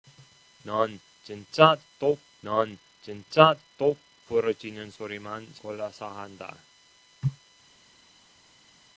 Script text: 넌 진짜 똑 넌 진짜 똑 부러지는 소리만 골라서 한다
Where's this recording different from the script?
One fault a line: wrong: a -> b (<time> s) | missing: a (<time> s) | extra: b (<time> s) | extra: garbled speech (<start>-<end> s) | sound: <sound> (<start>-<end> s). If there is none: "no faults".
no faults